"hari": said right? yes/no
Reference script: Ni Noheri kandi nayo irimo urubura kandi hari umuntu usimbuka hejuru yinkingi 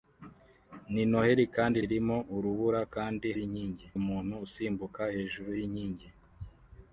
no